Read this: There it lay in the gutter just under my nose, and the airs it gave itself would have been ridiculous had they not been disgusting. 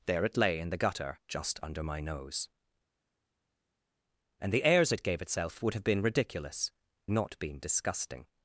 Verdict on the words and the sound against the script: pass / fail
fail